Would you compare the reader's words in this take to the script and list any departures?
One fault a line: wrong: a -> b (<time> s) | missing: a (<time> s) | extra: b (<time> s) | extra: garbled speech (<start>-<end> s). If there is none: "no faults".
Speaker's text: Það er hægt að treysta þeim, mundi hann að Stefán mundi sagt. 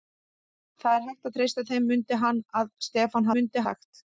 no faults